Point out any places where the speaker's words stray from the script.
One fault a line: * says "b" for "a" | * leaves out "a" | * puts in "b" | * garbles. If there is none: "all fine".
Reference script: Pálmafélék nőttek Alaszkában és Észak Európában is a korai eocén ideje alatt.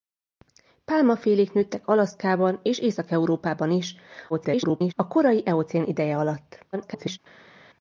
* garbles
* garbles